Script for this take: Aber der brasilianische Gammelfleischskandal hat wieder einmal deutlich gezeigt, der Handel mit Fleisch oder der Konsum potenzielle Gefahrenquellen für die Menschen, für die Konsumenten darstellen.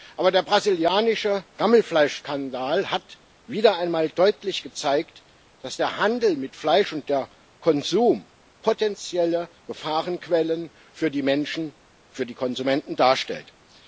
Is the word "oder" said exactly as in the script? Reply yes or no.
no